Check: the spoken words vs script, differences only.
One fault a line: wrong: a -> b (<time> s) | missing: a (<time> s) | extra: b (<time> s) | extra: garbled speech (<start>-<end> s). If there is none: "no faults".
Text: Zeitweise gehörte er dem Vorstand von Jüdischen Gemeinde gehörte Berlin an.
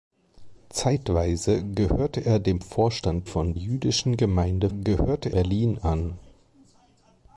no faults